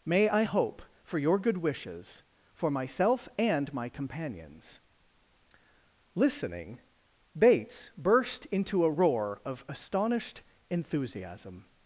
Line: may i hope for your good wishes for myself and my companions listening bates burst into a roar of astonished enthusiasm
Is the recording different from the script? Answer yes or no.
no